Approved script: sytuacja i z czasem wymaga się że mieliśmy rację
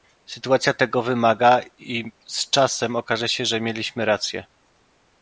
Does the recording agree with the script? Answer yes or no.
no